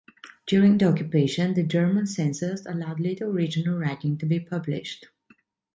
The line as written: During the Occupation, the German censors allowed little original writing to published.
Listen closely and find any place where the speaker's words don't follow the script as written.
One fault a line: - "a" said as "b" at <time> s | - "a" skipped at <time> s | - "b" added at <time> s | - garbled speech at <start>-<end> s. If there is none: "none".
- "be" added at 4.2 s